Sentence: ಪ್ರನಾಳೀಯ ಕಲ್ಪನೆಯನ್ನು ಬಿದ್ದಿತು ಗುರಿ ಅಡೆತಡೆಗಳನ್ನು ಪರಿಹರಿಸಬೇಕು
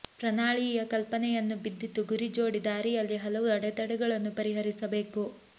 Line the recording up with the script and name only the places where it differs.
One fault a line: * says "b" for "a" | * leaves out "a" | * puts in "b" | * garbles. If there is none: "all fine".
* puts in "ಜೋಡಿ ದಾರಿಯಲ್ಲಿ ಹಲವು"